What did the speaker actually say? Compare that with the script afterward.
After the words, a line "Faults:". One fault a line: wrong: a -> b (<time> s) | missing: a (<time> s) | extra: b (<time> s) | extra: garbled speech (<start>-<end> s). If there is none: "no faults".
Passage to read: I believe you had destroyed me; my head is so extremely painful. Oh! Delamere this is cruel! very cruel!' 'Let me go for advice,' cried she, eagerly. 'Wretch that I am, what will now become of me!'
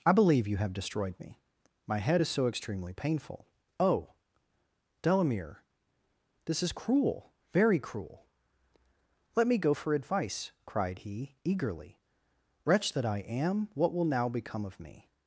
I believe you have destroyed me; my head is so extremely painful. Oh! Delamere this is cruel! very cruel!' 'Let me go for advice,' cried he, eagerly. 'Wretch that I am, what will now become of me!'
Faults:
wrong: had -> have (0.6 s)
wrong: she -> he (11.0 s)